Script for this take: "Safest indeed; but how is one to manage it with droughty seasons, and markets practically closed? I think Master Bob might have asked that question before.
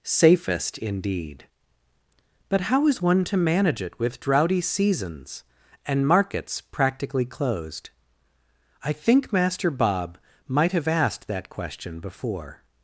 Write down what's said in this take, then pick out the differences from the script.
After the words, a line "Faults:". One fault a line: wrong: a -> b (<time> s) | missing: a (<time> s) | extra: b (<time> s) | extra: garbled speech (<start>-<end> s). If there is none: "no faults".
"Safest indeed; but how is one to manage it with droughty seasons, and markets practically closed? I think Master Bob might have asked that question before.
Faults:
no faults